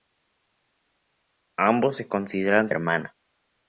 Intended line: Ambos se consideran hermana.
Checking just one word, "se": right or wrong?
right